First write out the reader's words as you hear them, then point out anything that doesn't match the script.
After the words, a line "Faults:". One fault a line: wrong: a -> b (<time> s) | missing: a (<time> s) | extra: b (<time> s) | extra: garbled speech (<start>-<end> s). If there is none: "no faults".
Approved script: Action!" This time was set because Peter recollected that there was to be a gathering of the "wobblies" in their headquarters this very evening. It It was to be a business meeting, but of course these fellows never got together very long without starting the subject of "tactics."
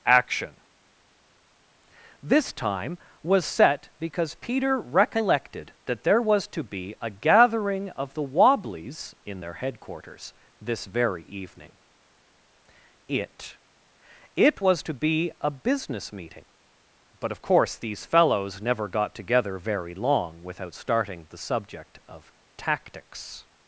Action!" This time was set because Peter recollected that there was to be a gathering of the "wobblies" in their headquarters this very evening. It It was to be a business meeting, but of course these fellows never got together very long without starting the subject of "tactics."
Faults:
no faults